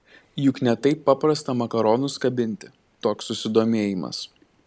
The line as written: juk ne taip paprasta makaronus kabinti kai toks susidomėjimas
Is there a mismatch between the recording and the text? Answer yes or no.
yes